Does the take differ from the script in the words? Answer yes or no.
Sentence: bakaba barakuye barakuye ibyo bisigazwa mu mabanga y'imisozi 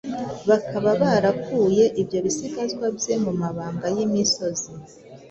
yes